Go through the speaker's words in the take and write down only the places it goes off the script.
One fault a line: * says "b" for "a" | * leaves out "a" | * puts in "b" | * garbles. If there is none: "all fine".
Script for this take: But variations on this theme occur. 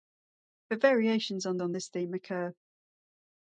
* puts in "on"